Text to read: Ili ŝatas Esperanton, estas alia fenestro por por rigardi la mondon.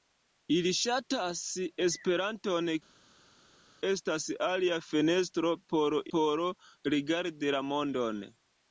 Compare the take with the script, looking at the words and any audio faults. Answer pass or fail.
pass